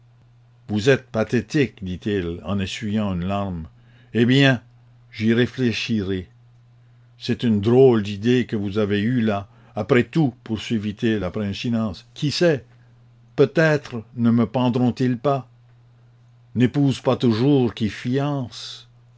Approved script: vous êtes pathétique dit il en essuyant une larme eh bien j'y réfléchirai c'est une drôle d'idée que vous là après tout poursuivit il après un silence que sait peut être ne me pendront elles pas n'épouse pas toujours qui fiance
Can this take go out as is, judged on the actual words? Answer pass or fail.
fail